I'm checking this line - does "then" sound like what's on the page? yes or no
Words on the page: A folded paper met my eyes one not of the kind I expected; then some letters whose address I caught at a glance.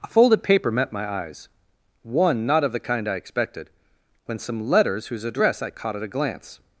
no